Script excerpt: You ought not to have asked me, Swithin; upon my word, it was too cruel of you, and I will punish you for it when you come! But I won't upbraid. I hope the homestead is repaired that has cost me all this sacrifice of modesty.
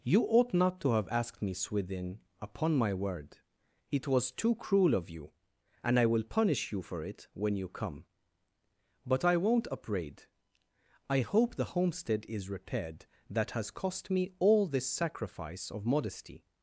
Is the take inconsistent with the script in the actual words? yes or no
no